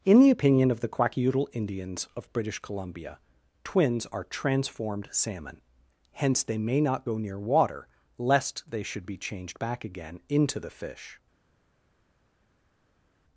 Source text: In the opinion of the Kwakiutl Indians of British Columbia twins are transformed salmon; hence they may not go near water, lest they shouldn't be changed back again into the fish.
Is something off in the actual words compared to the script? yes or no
yes